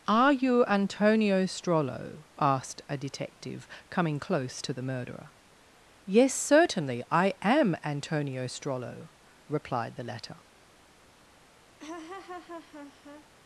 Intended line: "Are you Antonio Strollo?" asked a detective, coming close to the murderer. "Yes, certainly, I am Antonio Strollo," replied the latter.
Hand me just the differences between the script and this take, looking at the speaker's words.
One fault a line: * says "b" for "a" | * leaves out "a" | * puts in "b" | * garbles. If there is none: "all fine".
all fine